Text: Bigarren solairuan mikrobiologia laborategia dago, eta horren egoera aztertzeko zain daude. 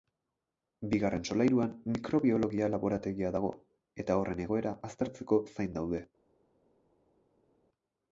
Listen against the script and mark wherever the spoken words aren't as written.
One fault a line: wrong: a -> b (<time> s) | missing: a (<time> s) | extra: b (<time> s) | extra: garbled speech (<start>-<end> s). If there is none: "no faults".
no faults